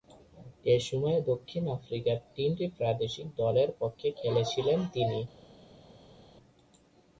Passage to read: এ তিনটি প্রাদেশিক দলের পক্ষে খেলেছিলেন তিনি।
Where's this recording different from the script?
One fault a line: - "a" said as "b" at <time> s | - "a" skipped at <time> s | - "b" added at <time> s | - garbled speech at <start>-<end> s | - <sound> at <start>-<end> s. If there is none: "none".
- "সময়ে দক্ষিণ আফ্রিকার" added at 0.9 s